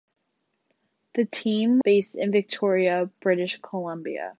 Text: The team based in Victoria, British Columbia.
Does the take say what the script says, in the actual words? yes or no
yes